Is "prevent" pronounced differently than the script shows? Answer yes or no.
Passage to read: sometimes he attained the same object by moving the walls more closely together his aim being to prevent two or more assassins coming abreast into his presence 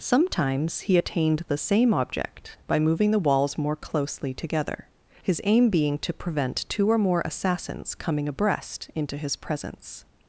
no